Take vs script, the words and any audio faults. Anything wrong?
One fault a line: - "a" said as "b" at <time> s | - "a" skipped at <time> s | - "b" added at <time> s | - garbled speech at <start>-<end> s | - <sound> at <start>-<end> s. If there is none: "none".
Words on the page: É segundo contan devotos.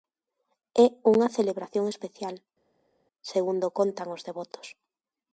- "unha celebración especial" added at 1.1 s
- "os" added at 4.1 s